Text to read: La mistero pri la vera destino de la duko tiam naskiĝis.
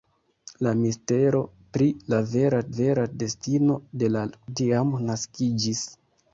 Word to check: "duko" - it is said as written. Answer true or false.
false